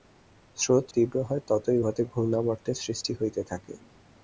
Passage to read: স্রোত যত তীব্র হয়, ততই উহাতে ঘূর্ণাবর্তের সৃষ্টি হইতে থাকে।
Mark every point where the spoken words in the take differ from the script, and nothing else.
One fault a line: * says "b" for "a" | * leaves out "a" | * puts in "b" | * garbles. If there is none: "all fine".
* leaves out "যত"